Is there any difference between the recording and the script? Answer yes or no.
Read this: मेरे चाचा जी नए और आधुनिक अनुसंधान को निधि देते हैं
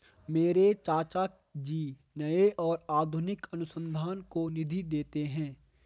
no